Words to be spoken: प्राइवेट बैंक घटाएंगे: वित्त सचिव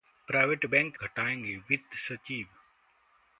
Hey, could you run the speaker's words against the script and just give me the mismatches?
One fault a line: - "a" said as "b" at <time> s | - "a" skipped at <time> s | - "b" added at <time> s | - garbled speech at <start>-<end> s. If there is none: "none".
none